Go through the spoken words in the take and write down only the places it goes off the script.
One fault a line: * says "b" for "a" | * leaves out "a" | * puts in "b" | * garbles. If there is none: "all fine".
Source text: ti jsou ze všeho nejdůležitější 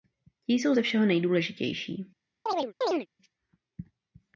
all fine